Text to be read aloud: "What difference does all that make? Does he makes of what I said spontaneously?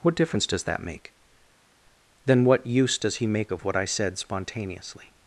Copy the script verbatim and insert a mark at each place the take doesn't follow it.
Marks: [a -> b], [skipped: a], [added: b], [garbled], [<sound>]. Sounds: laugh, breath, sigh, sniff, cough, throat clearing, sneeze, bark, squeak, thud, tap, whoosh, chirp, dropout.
"What difference does [skipped: all] that make? [added: Then what use] Does he [makes -> make] of what I said spontaneously?